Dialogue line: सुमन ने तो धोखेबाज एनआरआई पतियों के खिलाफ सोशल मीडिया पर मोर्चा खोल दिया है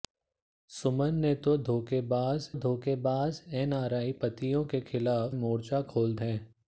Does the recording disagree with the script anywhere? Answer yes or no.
yes